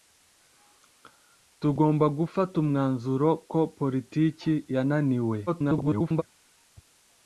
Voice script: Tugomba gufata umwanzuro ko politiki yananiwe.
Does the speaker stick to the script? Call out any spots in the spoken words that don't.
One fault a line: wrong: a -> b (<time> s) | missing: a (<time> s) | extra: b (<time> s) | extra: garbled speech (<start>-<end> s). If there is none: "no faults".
extra: garbled speech (5.5-6.2 s)